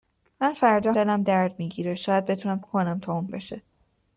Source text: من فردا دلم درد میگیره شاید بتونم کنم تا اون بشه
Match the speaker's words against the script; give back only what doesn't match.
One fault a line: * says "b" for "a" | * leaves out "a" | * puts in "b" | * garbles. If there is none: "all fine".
all fine